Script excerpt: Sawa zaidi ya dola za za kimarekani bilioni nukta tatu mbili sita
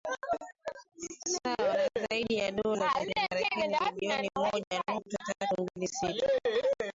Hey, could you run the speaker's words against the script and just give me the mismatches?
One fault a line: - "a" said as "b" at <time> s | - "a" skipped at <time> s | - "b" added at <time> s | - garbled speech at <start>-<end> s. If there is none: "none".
- "na" added at 1.7 s
- "za" skipped at 3.0 s
- "moja" added at 4.4 s